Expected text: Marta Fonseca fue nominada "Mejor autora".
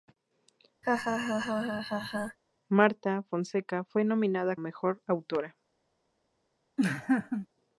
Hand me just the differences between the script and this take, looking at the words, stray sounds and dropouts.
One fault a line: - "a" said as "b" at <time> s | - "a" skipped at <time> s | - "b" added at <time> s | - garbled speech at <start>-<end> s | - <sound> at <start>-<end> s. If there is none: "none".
- laugh at 0.8-2.4 s
- laugh at 6.8-7.5 s